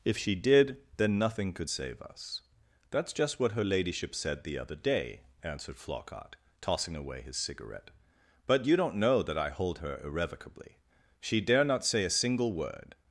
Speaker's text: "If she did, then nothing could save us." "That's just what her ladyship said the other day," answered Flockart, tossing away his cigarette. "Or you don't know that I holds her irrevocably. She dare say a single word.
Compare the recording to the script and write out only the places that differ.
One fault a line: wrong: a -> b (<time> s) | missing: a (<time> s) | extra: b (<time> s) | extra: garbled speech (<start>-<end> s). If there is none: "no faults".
wrong: Or -> But (8.4 s)
wrong: holds -> hold (9.5 s)
extra: not (11.6 s)